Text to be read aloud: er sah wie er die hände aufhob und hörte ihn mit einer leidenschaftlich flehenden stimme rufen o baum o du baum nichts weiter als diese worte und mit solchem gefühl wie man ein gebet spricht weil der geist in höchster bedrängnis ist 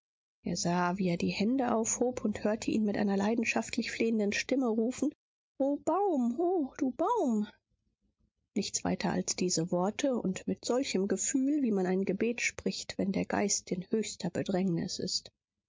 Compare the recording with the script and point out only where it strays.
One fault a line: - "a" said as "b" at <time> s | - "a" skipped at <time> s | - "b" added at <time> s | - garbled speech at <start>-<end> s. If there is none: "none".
- "weil" said as "wenn" at 13.0 s